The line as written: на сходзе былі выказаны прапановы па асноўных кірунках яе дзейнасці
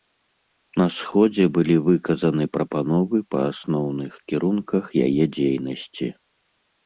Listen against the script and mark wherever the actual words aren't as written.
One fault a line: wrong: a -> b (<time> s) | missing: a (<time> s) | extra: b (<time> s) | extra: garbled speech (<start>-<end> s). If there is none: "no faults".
no faults